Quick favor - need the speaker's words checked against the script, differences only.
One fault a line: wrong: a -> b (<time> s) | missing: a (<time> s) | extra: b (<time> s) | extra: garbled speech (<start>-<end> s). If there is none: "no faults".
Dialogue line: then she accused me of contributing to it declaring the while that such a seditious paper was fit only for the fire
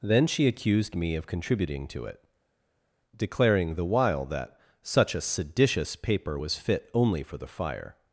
no faults